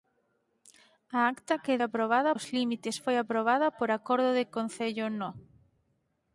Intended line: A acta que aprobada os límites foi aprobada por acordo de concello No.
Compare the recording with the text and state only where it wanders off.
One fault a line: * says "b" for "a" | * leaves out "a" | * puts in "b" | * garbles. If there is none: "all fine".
all fine